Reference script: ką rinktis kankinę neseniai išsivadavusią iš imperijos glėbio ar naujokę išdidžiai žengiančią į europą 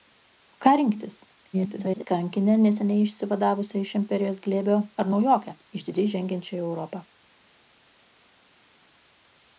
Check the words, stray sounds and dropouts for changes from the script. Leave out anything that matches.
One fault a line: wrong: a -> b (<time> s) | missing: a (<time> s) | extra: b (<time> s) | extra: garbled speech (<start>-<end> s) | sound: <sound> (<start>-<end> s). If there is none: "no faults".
extra: garbled speech (1.5-2.1 s)